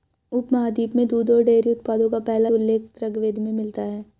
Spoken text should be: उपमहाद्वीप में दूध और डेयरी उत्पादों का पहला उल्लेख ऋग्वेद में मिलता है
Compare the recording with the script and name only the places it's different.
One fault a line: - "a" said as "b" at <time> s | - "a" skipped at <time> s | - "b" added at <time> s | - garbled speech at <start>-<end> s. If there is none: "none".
none